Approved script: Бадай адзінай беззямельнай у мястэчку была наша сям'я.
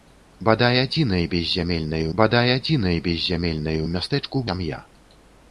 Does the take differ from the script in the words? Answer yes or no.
yes